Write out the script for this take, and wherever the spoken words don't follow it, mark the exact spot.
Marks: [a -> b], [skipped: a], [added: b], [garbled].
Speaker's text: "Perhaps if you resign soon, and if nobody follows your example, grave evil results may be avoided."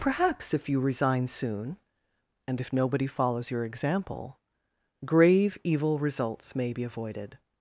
"Perhaps if you resign soon, and if nobody follows your example, grave evil results may be avoided."